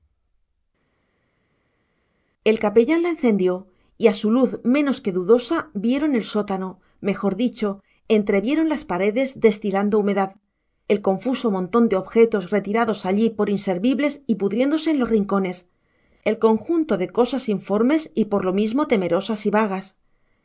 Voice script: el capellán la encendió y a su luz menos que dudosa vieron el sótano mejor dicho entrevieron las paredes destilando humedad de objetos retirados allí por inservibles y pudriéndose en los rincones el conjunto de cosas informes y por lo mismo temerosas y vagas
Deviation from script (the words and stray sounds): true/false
true